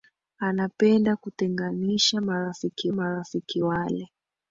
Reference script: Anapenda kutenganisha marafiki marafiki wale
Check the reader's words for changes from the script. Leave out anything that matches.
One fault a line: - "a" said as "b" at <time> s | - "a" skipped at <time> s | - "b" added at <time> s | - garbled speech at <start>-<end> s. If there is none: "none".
none